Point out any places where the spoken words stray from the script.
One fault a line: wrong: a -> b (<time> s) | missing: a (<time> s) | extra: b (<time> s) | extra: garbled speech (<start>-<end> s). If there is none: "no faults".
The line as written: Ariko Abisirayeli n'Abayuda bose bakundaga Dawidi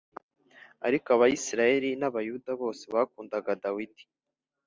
no faults